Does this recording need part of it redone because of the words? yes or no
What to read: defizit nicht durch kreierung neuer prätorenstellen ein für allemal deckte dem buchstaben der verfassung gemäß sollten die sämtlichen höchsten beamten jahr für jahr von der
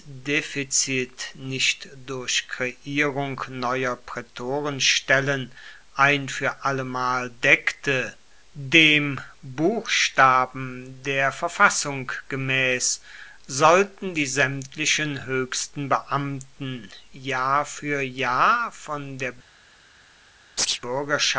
no